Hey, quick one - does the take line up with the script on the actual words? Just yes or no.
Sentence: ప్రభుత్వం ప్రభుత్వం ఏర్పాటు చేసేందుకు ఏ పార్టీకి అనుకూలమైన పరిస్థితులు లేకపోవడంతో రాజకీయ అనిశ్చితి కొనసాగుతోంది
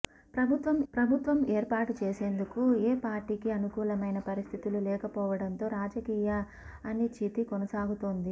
yes